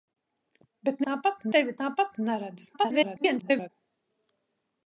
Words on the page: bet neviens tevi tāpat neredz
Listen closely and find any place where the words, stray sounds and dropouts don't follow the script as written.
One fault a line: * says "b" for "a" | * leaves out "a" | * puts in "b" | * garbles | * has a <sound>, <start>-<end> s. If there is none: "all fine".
* says "tāpat" for "neviens"
* garbles